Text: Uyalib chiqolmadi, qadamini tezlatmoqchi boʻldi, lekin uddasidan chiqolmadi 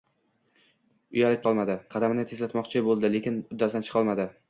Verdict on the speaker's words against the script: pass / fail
pass